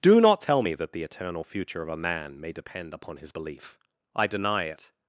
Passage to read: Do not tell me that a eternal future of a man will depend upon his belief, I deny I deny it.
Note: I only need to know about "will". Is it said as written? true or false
false